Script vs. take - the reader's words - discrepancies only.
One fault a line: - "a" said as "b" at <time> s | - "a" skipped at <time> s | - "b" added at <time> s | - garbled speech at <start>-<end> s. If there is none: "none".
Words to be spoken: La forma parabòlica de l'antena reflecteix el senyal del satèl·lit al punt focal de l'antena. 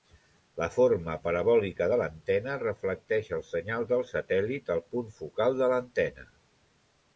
none